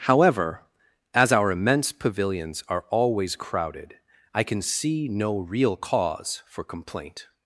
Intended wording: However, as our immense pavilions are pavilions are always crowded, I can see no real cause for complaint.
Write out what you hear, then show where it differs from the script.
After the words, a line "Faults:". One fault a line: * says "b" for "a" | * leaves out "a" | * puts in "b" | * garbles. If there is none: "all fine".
However, as our immense pavilions are always crowded, I can see no real cause for complaint.
Faults:
* leaves out "pavilions are"